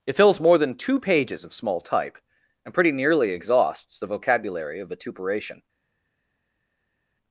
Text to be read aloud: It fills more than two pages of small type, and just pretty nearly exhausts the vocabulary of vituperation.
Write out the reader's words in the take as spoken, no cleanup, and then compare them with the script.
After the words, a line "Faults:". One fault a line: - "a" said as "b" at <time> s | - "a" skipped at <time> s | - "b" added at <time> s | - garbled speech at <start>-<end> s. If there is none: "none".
It fills more than two pages of small type, and pretty nearly exhausts the vocabulary of vituperation.
Faults:
- "just" skipped at 2.7 s